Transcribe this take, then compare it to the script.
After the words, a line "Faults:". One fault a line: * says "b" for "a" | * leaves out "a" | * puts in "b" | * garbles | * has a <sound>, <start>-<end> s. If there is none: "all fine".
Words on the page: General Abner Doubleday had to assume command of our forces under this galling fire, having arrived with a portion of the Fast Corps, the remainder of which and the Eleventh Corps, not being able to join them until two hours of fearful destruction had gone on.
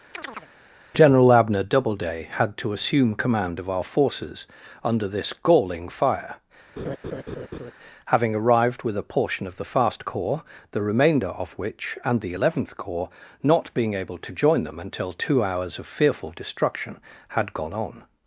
General Abner Doubleday had to assume command of our forces under this galling fire, having arrived with a portion of the Fast Corps, the remainder of which and the Eleventh Corps, not being able to join them until two hours of fearful destruction had gone on.
Faults:
* has a chirp, 0.1-0.5 s
* has a laugh, 6.8-7.7 s